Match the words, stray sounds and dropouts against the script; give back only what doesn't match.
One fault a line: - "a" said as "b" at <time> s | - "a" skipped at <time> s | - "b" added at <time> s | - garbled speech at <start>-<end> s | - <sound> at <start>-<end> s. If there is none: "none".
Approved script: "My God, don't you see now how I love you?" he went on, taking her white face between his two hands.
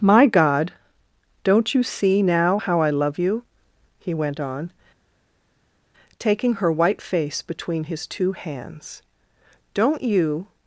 - "Don't you" added at 9.8 s